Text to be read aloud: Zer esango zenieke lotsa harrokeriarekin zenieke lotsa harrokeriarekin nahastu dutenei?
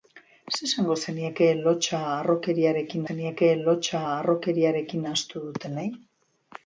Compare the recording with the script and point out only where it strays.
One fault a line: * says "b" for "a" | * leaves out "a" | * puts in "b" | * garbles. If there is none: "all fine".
all fine